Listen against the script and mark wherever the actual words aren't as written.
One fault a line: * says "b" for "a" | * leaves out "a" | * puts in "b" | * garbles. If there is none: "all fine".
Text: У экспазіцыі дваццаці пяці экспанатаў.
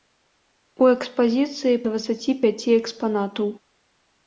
all fine